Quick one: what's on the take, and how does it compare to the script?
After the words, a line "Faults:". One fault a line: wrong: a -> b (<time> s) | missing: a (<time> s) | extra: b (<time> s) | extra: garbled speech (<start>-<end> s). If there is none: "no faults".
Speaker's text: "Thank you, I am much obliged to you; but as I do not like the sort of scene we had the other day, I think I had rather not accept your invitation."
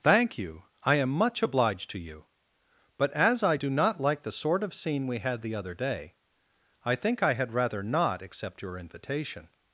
"Thank you, I am much obliged to you; but as I do not like the sort of scene we had the other day, I think I had rather not accept your invitation."
Faults:
no faults